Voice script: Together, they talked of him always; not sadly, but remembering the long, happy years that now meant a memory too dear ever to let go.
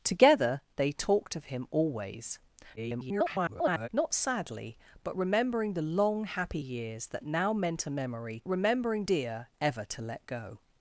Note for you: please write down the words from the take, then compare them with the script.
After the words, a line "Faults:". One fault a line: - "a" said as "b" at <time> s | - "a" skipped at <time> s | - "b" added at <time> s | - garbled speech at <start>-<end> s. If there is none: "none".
Together, they talked of him always; [garbled] not sadly, but remembering the long, happy years that now meant a memory remembering dear ever to let go.
Faults:
- garbled speech at 2.8-3.9 s
- "too" said as "remembering" at 8.5 s